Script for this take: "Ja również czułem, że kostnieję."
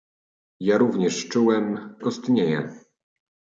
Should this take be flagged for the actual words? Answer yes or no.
yes